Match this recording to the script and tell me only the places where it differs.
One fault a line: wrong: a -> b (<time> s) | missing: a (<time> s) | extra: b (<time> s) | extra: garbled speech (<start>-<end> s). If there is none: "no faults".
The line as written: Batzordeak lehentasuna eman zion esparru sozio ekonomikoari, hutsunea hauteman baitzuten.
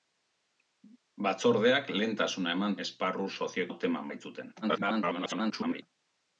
missing: zion (2.8 s)
missing: ekonomikoari hutsunea (3.7 s)
extra: garbled speech (4.6-5.8 s)